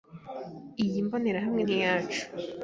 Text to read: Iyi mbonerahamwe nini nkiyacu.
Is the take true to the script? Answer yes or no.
no